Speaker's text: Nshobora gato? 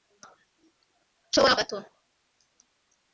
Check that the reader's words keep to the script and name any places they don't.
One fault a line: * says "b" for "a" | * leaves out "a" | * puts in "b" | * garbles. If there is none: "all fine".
all fine